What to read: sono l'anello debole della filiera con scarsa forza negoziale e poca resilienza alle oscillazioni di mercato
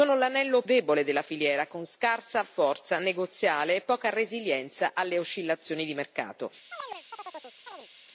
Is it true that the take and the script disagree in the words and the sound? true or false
true